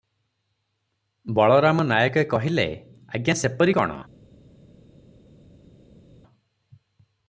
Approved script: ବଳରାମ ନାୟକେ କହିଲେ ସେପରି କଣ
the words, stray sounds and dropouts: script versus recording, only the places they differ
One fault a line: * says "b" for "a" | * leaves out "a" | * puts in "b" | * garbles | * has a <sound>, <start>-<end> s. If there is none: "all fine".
* puts in "ଆଜ୍ଞା"